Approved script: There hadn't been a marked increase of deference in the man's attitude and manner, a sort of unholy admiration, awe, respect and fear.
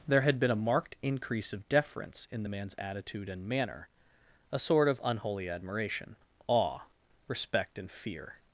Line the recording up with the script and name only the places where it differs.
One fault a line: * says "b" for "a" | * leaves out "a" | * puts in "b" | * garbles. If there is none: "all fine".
* says "had" for "hadn't"